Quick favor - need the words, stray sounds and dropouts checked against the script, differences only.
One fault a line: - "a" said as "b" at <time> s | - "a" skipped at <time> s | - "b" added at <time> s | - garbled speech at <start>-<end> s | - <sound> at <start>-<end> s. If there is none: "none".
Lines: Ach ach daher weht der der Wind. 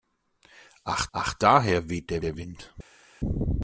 none